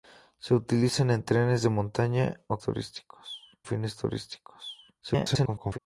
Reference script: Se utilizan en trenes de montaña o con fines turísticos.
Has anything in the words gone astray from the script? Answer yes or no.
yes